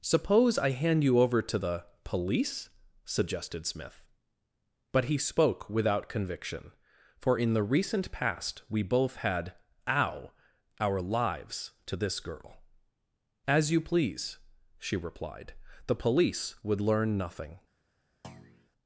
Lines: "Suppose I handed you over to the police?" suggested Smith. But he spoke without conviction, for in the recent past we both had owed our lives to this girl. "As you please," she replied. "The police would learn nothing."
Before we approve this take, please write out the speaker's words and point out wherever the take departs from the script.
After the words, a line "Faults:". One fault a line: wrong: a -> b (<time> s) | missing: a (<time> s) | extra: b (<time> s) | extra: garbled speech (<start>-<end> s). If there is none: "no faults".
"Suppose I hand you over to the police?" suggested Smith. But he spoke without conviction, for in the recent past we both had ow our lives to this girl. "As you please," she replied. "The police would learn nothing."
Faults:
wrong: handed -> hand (0.7 s)
wrong: owed -> ow (9.9 s)